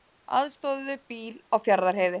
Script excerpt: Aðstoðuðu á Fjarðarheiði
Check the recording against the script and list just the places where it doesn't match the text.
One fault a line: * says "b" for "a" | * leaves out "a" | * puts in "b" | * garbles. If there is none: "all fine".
* puts in "bíl"